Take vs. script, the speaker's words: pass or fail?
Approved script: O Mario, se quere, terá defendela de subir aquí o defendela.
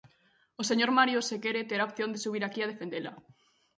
fail